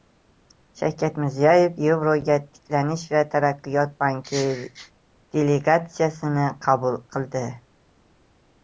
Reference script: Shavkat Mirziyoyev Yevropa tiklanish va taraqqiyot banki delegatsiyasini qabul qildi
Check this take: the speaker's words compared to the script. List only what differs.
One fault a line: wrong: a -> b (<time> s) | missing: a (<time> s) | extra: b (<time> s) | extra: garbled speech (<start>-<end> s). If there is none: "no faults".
no faults